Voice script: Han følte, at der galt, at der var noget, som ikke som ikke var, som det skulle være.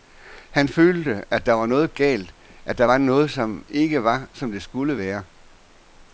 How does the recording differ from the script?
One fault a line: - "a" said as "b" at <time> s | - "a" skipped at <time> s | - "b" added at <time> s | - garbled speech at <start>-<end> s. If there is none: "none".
- "var noget" added at 1.5 s
- "som ikke" skipped at 4.0 s